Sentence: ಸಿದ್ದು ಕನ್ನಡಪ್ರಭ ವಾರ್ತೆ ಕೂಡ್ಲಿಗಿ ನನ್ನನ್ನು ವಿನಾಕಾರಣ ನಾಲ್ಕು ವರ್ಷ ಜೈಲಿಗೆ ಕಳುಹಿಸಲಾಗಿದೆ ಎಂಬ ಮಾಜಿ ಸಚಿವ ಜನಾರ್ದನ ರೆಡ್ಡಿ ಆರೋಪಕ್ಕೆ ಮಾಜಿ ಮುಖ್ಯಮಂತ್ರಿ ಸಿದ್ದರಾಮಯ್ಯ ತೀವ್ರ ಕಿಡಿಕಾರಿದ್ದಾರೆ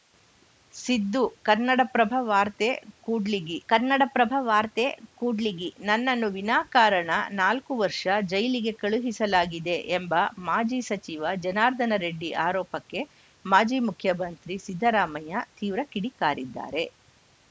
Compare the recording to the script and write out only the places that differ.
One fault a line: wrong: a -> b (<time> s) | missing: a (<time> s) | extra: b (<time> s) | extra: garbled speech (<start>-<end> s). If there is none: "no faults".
extra: ಕನ್ನಡಪ್ರಭ ವಾರ್ತೆ ಕೂಡ್ಲಿಗಿ (3.7 s)